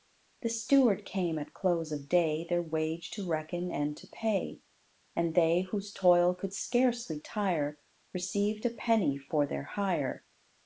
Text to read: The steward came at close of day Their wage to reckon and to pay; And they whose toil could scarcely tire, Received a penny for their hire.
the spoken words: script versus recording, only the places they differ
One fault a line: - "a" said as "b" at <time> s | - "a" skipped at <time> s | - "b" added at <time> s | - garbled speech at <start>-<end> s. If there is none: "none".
none